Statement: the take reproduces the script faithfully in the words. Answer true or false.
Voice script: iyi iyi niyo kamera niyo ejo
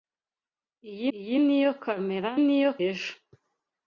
true